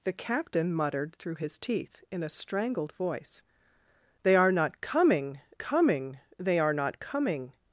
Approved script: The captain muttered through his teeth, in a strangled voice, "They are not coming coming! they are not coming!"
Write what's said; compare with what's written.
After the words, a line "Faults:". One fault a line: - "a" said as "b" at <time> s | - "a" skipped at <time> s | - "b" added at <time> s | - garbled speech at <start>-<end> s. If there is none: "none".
The captain muttered through his teeth, in a strangled voice, "They are not coming coming! they are not coming!"
Faults:
none